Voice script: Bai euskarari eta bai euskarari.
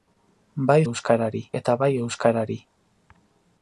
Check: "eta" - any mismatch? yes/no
no